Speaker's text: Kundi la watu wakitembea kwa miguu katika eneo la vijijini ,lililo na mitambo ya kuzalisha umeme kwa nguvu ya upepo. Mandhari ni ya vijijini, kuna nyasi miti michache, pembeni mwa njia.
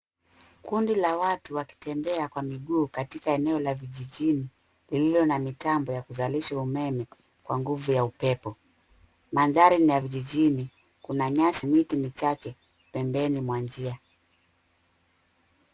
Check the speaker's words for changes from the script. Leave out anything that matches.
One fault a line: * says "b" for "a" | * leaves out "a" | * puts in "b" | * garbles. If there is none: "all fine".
all fine